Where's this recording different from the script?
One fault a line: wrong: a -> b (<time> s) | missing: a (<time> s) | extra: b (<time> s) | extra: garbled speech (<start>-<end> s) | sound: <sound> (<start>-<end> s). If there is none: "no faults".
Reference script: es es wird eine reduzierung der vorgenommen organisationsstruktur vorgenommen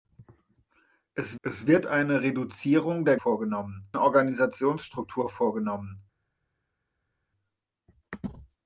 no faults